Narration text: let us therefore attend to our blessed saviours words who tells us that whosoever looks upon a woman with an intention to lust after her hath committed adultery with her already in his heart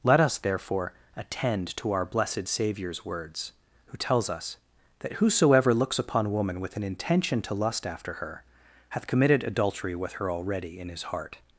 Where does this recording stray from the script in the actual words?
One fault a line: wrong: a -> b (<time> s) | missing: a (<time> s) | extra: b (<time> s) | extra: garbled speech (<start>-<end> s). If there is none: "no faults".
missing: a (6.3 s)